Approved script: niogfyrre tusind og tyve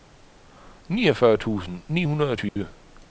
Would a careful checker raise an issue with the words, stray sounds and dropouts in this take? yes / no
yes